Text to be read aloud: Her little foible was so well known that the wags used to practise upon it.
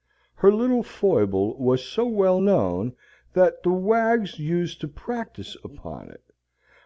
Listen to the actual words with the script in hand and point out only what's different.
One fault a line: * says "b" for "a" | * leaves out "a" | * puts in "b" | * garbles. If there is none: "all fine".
all fine